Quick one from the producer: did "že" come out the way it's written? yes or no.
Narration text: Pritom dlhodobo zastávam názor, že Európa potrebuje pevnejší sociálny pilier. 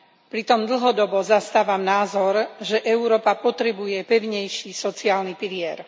yes